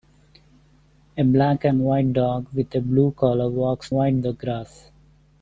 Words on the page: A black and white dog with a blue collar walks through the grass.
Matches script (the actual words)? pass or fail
fail